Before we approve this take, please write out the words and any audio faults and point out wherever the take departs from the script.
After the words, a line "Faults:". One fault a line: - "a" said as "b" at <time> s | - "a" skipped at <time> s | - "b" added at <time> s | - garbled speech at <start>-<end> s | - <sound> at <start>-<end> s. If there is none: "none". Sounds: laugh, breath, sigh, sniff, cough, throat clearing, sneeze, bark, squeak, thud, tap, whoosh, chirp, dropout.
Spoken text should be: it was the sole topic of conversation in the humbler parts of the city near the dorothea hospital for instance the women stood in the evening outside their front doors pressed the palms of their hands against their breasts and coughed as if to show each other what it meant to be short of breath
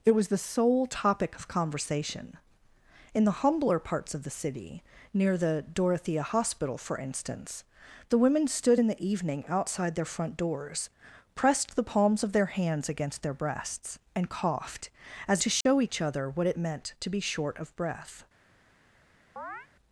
it was the sole topic of conversation in the humbler parts of the city near the dorothea hospital for instance the women stood in the evening outside their front doors pressed the palms of their hands against their breasts and coughed as to show each other what it meant to be short of breath
Faults:
- "if" skipped at 15.4 s
- dropout at 15.6-15.7 s
- chirp at 19.4-19.7 s